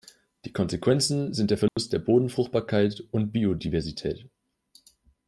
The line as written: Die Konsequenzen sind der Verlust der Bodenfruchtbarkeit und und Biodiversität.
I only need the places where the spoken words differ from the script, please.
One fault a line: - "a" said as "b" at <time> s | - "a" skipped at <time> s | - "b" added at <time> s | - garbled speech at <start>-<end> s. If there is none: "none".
- "und" skipped at 3.3 s